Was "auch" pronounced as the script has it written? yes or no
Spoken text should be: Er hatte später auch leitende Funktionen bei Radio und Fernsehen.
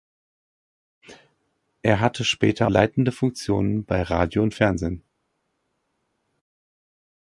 no